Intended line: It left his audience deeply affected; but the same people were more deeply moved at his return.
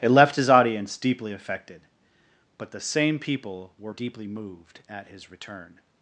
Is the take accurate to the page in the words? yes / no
no